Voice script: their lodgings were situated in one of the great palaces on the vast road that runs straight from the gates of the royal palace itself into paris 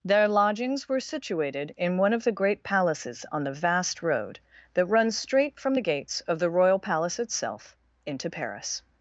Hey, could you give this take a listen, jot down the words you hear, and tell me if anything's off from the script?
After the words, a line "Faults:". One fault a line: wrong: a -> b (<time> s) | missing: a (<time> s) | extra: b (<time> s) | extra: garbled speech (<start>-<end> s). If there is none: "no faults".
their lodgings were situated in one of the great palaces on the vast road that runs straight from the gates of the royal palace itself into paris
Faults:
no faults